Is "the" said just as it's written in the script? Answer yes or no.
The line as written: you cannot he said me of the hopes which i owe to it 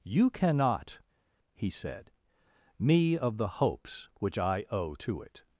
yes